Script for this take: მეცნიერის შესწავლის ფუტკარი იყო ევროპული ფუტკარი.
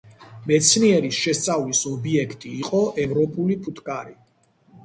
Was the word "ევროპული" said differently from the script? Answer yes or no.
no